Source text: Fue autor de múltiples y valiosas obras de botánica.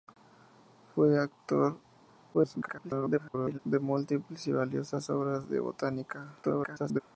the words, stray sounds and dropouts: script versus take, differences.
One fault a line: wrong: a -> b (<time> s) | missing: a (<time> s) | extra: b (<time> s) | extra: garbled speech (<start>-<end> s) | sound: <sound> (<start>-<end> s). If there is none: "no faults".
extra: garbled speech (2.3-3.6 s)
extra: garbled speech (6.4-7.0 s)